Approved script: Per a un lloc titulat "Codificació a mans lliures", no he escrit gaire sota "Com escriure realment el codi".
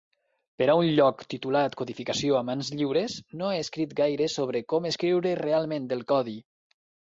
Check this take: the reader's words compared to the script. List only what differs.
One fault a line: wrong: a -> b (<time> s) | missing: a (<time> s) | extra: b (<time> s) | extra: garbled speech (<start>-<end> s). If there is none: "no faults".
wrong: sota -> sobre (4.4 s)